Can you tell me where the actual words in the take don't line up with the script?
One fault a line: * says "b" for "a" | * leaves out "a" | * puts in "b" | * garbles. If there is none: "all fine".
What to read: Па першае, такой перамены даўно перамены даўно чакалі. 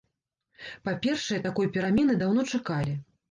* leaves out "перамены даўно"